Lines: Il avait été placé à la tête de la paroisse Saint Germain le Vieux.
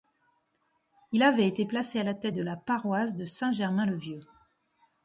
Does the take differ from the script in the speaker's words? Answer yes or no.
yes